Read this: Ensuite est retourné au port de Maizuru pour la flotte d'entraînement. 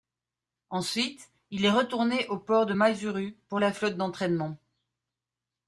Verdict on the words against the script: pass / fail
fail